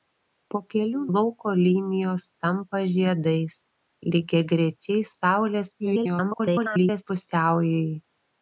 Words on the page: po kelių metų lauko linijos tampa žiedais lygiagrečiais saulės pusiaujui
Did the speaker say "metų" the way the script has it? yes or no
no